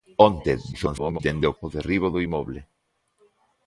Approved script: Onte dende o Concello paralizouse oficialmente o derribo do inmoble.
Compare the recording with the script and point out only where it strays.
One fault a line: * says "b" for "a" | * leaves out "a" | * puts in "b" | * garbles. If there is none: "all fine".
* garbles
* leaves out "Concello paralizouse oficialmente"